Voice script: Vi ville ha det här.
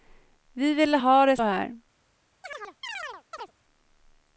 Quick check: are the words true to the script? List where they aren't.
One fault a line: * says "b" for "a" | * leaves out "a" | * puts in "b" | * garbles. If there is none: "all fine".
all fine